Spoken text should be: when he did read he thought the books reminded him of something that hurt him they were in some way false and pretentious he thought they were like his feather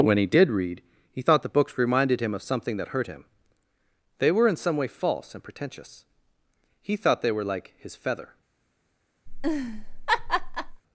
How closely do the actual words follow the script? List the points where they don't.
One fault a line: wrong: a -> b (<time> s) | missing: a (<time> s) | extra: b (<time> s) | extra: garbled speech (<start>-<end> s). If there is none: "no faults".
no faults